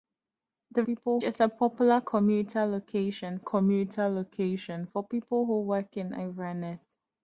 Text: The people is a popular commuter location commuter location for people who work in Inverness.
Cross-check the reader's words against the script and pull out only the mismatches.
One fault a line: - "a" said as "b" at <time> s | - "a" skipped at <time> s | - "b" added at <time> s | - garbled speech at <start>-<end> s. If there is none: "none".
none